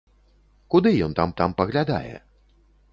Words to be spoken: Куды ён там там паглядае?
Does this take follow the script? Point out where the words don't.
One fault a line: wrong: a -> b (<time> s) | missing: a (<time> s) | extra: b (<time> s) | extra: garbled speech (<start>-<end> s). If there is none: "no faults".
no faults